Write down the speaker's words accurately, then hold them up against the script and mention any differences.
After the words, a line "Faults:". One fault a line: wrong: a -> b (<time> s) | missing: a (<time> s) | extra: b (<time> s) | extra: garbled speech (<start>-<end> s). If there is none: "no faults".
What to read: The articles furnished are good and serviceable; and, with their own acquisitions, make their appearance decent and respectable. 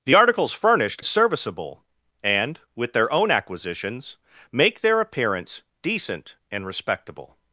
The articles furnished serviceable; and, with their own acquisitions, make their appearance decent and respectable.
Faults:
missing: are good and (1.0 s)